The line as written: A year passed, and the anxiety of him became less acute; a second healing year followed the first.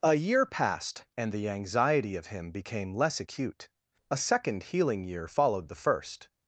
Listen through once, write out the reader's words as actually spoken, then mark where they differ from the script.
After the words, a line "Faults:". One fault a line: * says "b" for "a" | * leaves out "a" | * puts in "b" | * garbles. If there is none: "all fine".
A year passed, and the anxiety of him became less acute; a second healing year followed the first.
Faults:
all fine